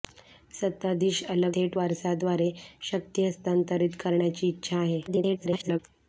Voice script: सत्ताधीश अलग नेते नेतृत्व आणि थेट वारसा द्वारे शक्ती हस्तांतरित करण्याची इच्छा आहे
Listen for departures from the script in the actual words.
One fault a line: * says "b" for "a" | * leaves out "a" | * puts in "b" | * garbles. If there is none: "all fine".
* leaves out "नेते नेतृत्व आणि"
* garbles